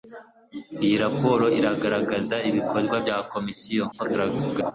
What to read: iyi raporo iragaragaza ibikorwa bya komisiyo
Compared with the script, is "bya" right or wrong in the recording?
right